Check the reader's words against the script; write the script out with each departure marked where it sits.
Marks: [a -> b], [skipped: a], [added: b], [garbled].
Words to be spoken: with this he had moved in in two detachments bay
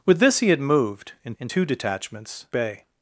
with this he had moved in in two detachments bay